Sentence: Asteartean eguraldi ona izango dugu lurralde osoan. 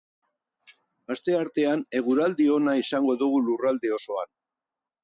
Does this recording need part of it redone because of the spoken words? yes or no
no